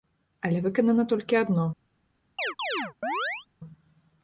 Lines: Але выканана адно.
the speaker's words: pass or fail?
fail